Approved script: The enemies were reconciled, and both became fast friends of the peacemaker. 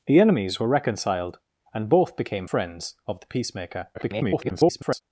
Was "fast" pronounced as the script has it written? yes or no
no